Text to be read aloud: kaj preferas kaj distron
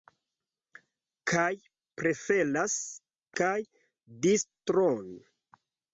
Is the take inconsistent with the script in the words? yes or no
no